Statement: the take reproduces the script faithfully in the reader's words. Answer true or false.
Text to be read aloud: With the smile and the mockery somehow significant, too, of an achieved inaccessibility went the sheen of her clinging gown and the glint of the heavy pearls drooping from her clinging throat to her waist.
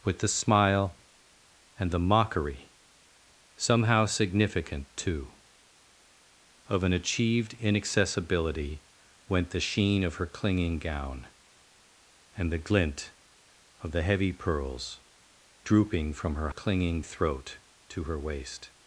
true